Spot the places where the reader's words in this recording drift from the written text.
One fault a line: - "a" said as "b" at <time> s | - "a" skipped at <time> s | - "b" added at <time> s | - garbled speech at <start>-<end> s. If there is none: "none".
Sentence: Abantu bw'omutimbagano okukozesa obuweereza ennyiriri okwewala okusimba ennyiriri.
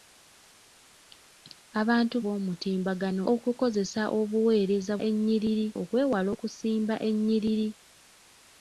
none